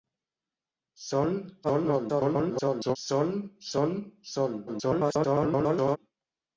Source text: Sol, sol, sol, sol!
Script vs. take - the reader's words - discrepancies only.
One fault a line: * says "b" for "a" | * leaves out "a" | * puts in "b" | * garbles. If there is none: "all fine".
* garbles
* garbles